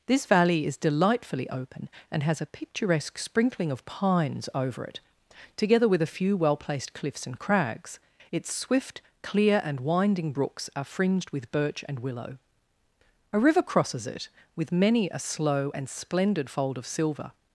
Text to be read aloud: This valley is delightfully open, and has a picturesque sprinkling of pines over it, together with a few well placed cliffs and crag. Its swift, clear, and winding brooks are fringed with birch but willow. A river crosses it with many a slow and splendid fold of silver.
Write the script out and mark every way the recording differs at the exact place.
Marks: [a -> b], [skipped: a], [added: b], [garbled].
This valley is delightfully open, and has a picturesque sprinkling of pines over it, together with a few well placed cliffs and [crag. -> crags] Its swift, clear, and winding brooks are fringed with birch [but -> and] willow. A river crosses it with many a slow and splendid fold of silver.